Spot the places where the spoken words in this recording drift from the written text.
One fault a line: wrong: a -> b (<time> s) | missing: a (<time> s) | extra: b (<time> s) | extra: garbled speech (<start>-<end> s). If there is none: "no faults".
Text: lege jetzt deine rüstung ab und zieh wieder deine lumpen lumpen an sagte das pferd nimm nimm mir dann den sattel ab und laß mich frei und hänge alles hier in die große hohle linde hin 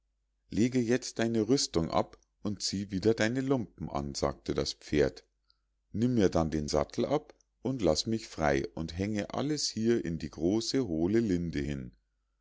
missing: lumpen (3.9 s)
missing: nimm (6.1 s)